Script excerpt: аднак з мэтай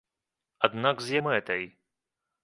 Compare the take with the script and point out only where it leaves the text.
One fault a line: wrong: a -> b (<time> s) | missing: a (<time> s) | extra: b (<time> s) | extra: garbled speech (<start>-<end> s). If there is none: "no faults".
no faults